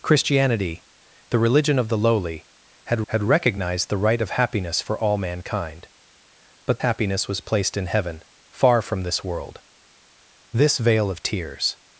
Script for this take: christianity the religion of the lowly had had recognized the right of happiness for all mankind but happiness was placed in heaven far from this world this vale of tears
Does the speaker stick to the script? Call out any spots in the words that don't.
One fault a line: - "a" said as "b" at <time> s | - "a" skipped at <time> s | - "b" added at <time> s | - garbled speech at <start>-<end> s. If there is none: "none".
none